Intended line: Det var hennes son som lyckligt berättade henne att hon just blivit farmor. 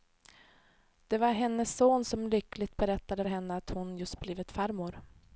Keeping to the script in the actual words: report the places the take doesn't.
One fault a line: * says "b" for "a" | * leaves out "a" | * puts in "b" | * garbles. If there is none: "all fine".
all fine